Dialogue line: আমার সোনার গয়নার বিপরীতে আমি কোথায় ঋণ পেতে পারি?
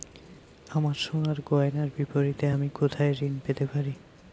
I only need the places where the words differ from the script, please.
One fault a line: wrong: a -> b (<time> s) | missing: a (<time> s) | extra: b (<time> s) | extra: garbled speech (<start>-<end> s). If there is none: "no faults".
no faults